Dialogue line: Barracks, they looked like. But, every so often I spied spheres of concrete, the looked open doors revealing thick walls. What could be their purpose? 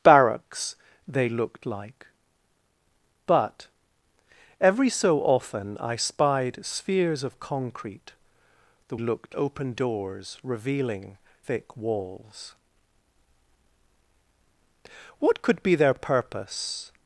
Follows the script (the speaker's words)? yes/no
yes